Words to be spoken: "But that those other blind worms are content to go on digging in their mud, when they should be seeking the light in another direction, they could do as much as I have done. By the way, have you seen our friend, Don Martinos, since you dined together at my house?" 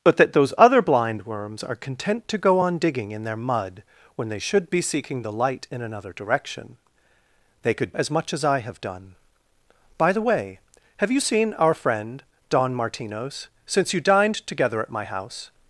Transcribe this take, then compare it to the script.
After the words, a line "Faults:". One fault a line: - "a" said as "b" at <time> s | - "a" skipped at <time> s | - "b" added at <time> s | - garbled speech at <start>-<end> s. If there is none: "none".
"But that those other blind worms are content to go on digging in their mud, when they should be seeking the light in another direction, they could as much as I have done. By the way, have you seen our friend, Don Martinos, since you dined together at my house?"
Faults:
- "do" skipped at 7.9 s